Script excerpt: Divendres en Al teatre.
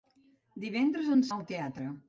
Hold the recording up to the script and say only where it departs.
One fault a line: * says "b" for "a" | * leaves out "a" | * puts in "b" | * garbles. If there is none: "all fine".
all fine